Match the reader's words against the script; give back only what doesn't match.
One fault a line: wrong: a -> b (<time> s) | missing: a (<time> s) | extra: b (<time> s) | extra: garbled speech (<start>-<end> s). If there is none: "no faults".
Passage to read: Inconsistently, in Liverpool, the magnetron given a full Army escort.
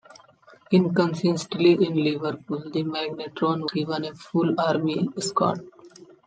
no faults